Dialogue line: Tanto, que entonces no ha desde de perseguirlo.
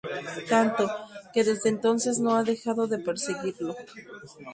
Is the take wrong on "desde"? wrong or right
wrong